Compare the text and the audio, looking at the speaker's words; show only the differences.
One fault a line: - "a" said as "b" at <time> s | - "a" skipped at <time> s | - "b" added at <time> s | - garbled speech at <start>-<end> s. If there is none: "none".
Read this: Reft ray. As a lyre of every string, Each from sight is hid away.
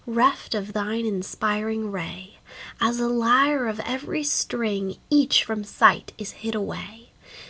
- "of thine inspiring" added at 0.6 s